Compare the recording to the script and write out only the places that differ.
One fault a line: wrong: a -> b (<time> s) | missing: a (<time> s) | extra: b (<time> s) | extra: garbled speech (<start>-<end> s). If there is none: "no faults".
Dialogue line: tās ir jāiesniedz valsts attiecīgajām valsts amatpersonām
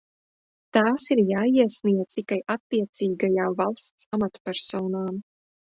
wrong: valsts -> tikai (2.2 s)